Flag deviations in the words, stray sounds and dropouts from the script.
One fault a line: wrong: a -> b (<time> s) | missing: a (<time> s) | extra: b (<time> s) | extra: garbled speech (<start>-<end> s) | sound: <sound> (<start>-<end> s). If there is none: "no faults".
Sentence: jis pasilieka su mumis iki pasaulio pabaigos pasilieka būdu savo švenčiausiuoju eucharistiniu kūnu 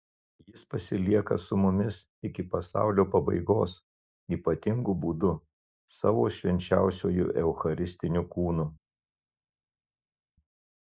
wrong: pasilieka -> ypatingu (4.4 s)